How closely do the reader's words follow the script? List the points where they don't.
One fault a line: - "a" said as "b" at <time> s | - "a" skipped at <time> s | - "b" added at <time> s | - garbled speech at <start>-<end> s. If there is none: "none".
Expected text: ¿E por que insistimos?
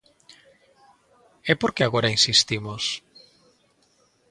- "agora" added at 1.8 s